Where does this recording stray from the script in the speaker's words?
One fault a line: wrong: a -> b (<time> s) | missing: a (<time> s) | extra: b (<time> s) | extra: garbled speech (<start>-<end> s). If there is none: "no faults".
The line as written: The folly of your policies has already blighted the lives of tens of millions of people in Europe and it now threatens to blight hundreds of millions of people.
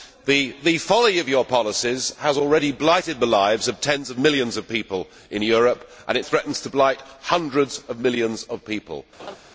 missing: now (6.2 s)